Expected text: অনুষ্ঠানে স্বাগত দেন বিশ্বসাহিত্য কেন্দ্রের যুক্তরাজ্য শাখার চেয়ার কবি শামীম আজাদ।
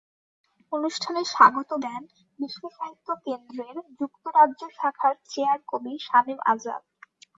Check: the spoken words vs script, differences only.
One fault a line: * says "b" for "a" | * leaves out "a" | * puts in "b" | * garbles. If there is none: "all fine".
all fine